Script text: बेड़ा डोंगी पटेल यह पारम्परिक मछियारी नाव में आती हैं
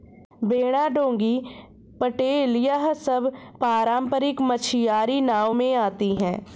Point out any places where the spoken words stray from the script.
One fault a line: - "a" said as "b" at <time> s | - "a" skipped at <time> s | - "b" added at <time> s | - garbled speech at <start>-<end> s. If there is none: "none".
- "सब" added at 2.9 s